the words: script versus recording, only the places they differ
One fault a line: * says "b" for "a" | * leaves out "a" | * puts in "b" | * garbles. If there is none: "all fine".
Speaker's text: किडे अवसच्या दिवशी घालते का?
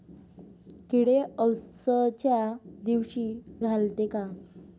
all fine